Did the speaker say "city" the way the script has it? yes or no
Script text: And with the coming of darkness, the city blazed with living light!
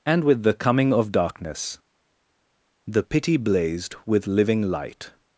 no